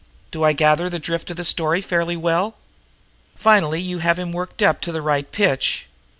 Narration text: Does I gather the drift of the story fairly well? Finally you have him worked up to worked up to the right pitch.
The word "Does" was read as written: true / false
false